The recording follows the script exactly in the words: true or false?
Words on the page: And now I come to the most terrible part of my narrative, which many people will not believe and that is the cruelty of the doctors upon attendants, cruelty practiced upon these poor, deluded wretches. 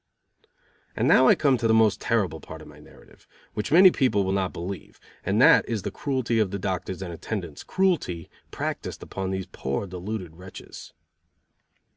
false